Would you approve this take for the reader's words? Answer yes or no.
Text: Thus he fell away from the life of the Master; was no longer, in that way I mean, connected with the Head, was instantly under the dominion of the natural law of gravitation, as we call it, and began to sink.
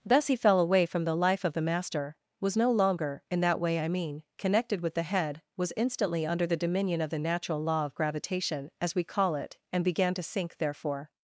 no